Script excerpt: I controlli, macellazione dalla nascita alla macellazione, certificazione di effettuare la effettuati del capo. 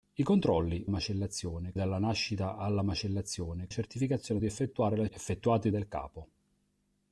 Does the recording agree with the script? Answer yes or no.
yes